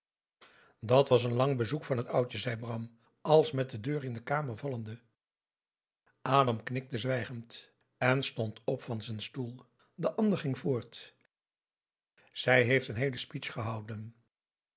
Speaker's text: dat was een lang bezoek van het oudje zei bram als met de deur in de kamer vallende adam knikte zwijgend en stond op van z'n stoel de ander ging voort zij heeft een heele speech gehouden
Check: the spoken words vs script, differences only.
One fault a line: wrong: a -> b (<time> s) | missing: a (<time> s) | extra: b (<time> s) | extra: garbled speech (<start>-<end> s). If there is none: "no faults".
no faults